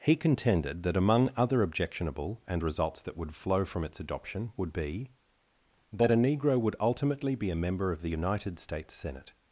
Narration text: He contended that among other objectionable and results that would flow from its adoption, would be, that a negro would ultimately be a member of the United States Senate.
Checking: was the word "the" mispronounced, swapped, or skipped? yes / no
no